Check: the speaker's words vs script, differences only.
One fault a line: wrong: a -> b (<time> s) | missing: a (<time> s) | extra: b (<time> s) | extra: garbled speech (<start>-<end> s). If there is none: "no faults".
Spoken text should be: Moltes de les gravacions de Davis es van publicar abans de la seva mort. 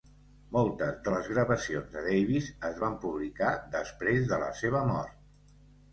wrong: abans -> després (3.8 s)